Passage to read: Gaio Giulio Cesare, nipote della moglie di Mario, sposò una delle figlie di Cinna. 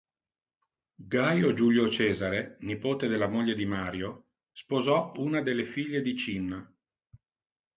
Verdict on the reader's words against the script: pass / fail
pass